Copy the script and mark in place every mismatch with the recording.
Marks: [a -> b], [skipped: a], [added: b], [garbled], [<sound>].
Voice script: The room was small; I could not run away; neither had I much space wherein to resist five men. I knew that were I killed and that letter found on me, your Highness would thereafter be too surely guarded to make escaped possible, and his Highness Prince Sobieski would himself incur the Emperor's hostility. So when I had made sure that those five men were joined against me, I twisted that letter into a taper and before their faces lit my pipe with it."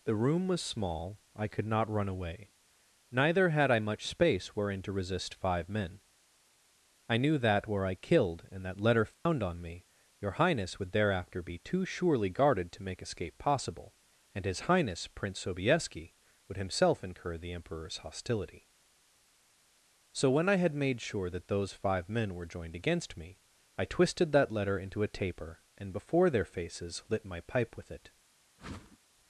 The room was small; I could not run away; neither had I much space wherein to resist five men. I knew that were I killed and that letter found [dropout] on me, your Highness would thereafter be too surely guarded to make [escaped -> escape] possible, and his Highness Prince Sobieski would himself incur the Emperor's hostility. So when I had made sure that those five men were joined against me, I twisted that letter into a taper and before their faces lit my pipe with it." [whoosh]